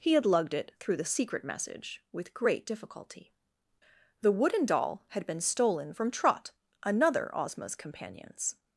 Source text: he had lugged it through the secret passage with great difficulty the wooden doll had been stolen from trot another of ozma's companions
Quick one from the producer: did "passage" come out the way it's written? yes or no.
no